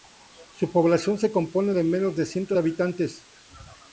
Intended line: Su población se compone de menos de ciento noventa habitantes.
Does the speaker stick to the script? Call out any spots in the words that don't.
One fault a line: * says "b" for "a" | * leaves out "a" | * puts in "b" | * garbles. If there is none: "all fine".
* leaves out "noventa"